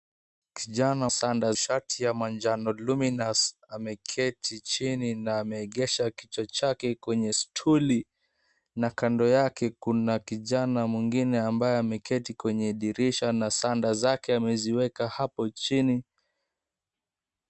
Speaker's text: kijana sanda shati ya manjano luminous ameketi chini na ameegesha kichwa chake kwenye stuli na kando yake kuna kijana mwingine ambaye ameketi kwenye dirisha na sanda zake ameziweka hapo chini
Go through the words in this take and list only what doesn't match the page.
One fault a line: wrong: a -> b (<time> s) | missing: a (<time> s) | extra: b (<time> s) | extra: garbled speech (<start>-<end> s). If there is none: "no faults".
no faults